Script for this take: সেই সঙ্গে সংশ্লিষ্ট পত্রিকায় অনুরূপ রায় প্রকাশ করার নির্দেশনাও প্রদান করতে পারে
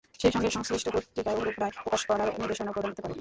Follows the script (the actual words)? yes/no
yes